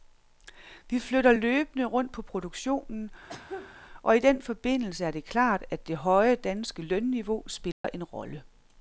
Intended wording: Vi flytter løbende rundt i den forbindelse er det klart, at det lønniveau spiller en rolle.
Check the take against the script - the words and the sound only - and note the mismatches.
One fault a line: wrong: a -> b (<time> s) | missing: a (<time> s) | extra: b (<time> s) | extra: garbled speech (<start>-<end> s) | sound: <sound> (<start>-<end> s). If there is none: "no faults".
extra: på produktionen og (2.1 s)
sound: cough (3.3-3.8 s)
extra: høje danske (6.0 s)
sound: dropout (7.7-7.8 s)